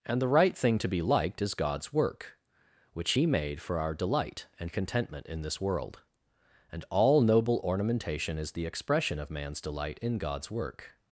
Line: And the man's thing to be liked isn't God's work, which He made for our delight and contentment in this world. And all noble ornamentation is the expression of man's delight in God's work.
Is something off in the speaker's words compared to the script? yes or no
yes